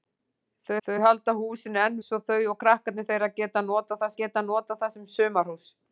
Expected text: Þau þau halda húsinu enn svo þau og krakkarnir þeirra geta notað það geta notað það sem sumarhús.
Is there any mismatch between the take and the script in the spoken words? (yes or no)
no